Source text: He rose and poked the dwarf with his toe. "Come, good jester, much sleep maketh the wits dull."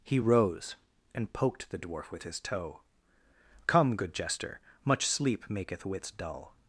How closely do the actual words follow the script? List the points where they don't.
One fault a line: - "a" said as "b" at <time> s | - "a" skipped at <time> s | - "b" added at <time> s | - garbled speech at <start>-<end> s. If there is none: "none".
- "the" skipped at 5.8 s